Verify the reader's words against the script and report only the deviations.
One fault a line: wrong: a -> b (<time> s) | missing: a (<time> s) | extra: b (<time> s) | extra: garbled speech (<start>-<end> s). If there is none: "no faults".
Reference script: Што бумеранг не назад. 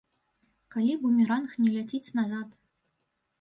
wrong: Што -> Калі (0.8 s)
extra: ляціць (1.8 s)